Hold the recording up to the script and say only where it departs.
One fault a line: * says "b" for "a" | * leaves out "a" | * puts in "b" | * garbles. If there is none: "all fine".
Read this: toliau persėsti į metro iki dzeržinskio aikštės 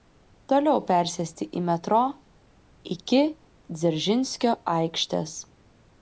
all fine